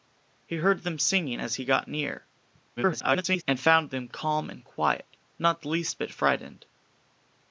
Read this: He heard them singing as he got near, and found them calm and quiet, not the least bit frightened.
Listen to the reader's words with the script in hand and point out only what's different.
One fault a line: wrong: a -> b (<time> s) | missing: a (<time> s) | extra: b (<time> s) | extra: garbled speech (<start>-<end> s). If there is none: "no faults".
extra: garbled speech (2.8-3.4 s)